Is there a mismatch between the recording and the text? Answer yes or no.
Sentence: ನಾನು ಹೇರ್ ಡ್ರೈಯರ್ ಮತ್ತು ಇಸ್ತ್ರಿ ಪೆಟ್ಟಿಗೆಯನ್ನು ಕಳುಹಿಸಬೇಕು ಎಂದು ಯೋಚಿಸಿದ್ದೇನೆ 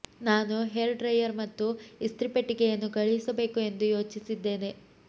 no